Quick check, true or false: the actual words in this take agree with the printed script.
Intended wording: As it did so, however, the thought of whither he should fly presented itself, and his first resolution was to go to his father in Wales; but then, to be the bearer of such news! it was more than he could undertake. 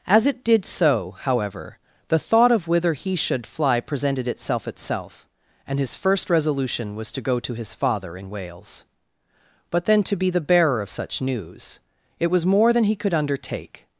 false